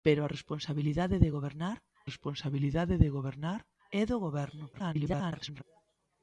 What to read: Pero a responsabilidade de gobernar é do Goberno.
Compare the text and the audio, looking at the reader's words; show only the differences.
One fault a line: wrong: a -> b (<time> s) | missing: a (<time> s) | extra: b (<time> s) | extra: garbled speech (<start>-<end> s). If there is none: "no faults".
extra: responsabilidade de gobernar (2.1 s)
extra: garbled speech (4.7-5.6 s)